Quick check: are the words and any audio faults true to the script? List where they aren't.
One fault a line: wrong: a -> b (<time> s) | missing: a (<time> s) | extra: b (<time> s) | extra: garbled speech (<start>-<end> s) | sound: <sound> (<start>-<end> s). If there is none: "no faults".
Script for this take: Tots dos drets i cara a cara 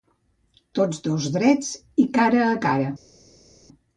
no faults